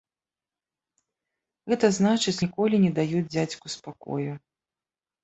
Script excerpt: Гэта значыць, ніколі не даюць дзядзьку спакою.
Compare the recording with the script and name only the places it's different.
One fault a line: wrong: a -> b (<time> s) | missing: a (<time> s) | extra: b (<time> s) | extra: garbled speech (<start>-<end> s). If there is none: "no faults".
no faults